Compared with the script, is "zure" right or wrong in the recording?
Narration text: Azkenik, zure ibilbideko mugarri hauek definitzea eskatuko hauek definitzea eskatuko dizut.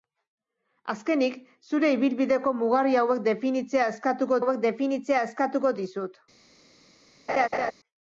right